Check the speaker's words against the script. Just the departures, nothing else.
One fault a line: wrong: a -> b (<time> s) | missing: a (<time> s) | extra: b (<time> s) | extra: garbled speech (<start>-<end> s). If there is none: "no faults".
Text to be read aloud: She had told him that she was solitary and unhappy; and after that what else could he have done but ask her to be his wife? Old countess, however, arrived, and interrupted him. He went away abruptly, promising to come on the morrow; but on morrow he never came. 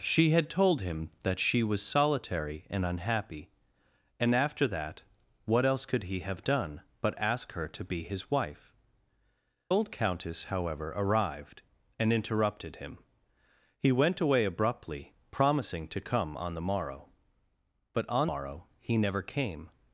no faults